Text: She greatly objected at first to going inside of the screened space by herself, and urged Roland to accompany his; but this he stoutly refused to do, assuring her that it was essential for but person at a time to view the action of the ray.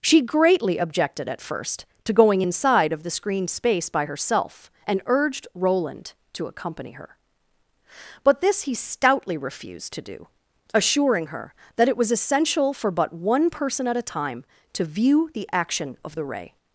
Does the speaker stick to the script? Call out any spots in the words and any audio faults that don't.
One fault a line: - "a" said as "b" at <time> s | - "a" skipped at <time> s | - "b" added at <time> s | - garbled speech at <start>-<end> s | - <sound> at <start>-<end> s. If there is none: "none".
- "his" said as "her" at 6.9 s
- "one" added at 13.1 s